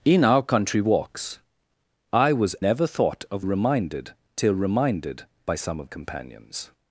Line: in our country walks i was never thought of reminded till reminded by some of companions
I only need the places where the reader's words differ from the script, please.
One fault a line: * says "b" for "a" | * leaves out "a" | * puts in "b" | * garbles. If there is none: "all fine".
all fine